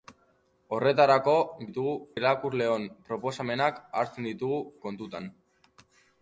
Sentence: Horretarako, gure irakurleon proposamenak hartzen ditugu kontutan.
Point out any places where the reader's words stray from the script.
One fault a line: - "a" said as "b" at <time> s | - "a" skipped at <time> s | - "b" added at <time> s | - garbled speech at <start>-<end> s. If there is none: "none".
- "gure" said as "ditugu" at 1.7 s